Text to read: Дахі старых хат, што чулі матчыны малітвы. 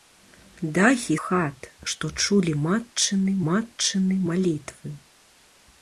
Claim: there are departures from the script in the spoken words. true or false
true